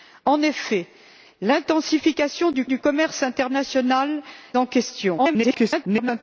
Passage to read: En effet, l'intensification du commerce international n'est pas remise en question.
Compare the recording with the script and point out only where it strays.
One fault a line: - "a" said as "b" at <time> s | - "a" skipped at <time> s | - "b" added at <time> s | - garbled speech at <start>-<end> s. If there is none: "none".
- "du" added at 2.6 s
- "n'est pas remise" skipped at 4.2 s
- garbled speech at 5.2-6.2 s